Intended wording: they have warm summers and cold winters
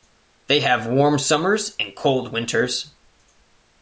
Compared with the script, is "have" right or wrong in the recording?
right